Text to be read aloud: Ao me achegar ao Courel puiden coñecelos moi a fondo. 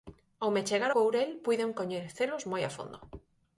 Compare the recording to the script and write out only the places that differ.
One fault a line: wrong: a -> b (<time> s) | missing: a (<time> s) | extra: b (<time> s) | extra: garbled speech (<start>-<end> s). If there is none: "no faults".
missing: ao (0.9 s)